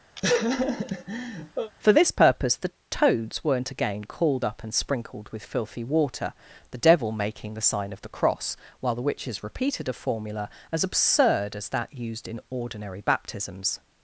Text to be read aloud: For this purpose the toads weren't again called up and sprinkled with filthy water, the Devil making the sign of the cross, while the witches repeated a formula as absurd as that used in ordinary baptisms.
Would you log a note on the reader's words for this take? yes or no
no